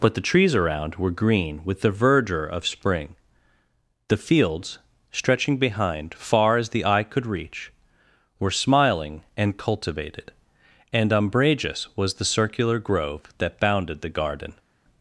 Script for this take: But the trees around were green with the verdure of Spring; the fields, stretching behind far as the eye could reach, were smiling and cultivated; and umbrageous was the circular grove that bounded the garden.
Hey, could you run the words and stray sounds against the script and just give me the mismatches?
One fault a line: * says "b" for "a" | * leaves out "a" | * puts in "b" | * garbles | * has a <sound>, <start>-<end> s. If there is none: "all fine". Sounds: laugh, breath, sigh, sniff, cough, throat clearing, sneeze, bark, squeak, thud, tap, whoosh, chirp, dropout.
all fine